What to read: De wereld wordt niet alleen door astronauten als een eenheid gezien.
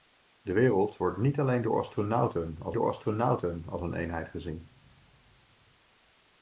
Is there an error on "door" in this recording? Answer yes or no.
no